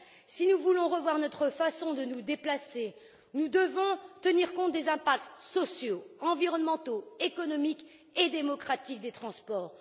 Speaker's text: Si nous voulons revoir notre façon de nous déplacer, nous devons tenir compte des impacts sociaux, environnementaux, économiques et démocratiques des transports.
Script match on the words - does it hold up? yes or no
yes